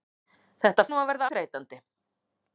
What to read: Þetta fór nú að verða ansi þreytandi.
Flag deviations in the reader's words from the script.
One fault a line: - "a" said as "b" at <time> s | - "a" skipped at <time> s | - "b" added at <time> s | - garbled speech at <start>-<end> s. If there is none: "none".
- "fór" skipped at 0.8 s
- "ansi" skipped at 1.3 s